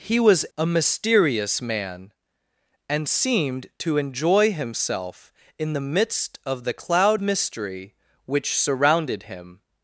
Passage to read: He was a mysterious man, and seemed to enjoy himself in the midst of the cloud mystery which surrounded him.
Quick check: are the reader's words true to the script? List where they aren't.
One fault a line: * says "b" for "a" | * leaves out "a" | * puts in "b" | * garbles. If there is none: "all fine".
all fine